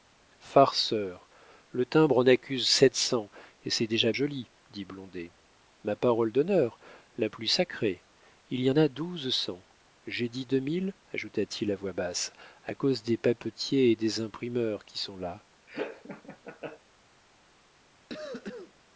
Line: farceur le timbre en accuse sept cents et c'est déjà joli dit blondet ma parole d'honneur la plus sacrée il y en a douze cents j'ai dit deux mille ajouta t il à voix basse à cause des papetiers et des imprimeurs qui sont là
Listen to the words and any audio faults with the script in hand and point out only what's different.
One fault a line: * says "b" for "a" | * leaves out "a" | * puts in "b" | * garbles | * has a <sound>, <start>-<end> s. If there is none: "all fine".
* has a laugh, 15.7-16.8 s
* has a cough, 18.1-18.7 s